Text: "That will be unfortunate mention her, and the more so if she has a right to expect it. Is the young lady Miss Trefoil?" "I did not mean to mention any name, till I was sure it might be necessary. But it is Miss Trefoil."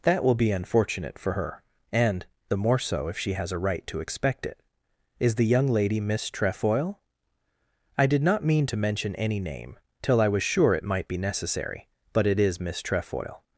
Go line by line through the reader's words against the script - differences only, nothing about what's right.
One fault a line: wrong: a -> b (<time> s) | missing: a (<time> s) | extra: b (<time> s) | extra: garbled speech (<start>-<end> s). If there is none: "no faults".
wrong: mention -> for (1.2 s)